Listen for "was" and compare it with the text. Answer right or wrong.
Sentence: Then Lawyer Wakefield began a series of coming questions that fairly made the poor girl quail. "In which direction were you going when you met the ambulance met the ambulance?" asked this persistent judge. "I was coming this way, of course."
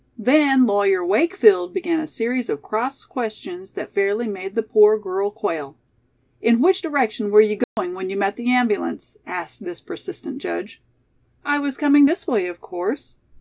right